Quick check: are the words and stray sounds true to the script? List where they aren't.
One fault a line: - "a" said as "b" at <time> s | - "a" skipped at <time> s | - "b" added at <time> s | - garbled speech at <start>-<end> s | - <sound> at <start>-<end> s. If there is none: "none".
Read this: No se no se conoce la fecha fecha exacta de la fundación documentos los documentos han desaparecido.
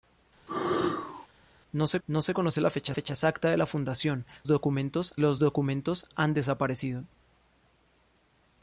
- sneeze at 0.5-1.3 s